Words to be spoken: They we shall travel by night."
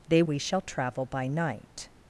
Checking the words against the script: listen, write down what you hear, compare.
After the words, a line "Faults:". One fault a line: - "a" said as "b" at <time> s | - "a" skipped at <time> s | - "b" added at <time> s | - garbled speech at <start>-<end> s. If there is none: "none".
They we shall travel by night."
Faults:
none